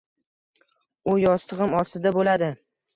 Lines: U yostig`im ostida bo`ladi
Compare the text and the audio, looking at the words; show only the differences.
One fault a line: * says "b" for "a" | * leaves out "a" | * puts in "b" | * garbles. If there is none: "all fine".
all fine